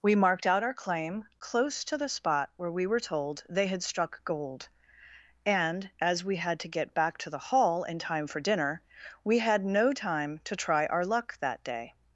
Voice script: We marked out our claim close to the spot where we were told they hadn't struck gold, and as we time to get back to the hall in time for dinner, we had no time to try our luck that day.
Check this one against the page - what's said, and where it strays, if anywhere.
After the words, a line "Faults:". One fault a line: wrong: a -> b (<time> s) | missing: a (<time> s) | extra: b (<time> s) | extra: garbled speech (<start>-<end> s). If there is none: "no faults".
We marked out our claim close to the spot where we were told they had struck gold, and as we had to get back to the hall in time for dinner, we had no time to try our luck that day.
Faults:
wrong: hadn't -> had (3.7 s)
wrong: time -> had (6.4 s)